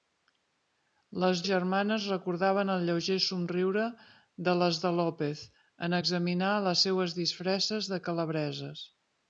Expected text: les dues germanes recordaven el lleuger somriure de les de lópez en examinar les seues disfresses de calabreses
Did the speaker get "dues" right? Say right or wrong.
wrong